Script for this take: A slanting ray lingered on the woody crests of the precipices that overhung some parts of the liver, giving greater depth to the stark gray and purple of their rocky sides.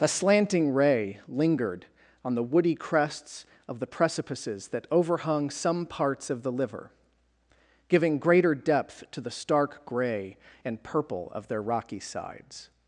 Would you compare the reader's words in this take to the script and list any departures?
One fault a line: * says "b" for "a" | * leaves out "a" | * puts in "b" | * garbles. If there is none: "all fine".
all fine